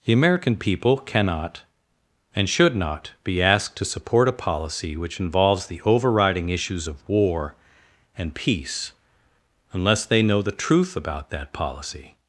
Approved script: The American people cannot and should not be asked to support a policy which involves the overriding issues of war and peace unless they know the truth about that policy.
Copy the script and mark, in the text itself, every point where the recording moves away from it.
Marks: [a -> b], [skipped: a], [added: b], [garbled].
The American people cannot and should not be asked to support a policy which involves the overriding issues of war and peace unless they know the truth about that policy.